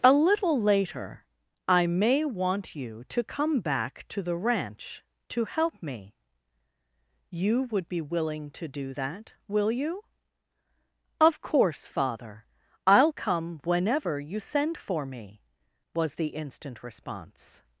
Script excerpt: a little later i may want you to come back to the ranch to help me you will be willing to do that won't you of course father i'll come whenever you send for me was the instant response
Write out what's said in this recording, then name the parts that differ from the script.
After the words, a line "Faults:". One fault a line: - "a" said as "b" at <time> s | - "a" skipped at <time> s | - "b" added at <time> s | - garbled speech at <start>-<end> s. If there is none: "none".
a little later i may want you to come back to the ranch to help me you would be willing to do that will you of course father i'll come whenever you send for me was the instant response
Faults:
- "will" said as "would" at 7.7 s
- "won't" said as "will" at 9.5 s